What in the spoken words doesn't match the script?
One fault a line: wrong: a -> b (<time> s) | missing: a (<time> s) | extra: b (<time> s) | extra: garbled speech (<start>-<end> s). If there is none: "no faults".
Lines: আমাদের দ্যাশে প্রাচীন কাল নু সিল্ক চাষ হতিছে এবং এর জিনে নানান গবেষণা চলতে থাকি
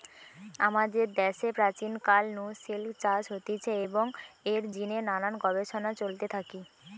no faults